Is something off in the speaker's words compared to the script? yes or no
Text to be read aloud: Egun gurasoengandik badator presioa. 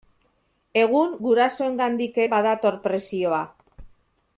no